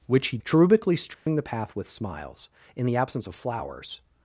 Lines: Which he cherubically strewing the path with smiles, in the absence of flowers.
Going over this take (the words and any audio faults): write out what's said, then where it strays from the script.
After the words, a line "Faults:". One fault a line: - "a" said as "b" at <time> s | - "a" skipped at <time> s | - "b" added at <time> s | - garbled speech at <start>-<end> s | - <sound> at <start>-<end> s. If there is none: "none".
Which he cherubically strewing the path with smiles, in the absence of flowers.
Faults:
- dropout at 1.1-1.3 s